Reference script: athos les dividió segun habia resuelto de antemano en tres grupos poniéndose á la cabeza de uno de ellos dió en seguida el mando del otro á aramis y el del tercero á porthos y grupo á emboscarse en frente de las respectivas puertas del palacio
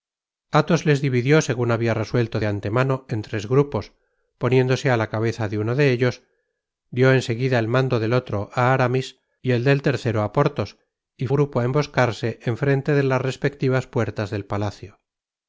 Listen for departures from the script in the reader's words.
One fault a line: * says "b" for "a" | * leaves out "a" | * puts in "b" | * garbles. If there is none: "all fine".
all fine